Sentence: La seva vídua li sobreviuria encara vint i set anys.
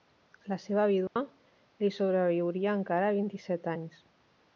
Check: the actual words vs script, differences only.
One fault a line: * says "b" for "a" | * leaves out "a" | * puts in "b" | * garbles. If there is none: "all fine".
all fine